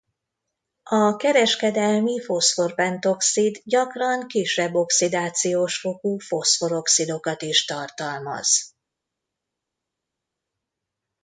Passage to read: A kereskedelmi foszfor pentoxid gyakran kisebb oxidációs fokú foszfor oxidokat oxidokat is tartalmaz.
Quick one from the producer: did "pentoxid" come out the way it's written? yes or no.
yes